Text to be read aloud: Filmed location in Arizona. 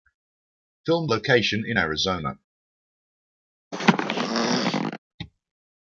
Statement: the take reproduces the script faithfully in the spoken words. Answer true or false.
true